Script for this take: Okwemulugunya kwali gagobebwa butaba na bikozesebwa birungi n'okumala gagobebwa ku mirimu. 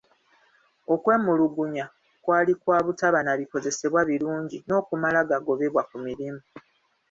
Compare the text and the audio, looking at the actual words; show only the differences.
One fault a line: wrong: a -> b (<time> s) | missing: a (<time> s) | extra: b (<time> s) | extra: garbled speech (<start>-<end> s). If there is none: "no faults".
wrong: gagobebwa -> kwa (2.6 s)